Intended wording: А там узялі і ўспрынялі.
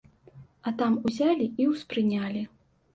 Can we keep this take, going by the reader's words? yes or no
yes